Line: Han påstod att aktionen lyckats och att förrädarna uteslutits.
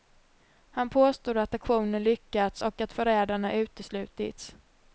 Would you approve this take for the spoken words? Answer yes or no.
yes